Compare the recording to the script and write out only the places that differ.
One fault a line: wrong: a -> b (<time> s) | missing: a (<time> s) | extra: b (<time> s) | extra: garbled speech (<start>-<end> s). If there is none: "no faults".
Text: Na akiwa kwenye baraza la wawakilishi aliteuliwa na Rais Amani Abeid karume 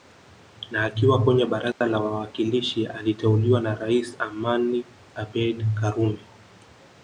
no faults